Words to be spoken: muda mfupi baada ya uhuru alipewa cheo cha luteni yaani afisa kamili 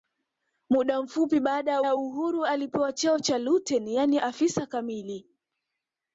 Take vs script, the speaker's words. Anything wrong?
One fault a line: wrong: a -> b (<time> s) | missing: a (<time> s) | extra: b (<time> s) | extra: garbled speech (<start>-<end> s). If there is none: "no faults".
extra: ya (1.8 s)